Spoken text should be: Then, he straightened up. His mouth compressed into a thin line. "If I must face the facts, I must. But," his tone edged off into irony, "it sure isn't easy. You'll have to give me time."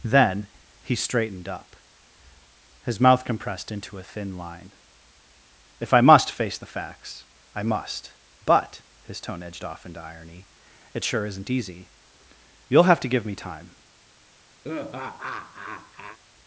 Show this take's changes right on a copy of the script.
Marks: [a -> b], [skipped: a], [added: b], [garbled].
Then, he straightened up. His mouth compressed into a thin line. "If I must face the facts, I must. But," his tone edged off into irony, "it sure isn't easy. You'll have to give me time."